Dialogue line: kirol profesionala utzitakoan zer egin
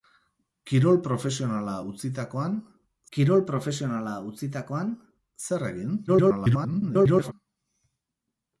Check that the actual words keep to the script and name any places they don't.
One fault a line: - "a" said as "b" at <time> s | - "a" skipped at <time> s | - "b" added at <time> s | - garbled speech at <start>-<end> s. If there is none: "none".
- "kirol profesionala utzitakoan" added at 3.1 s
- garbled speech at 6.1-7.3 s